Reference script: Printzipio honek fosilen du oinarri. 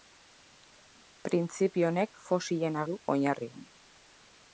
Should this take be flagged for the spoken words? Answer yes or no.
no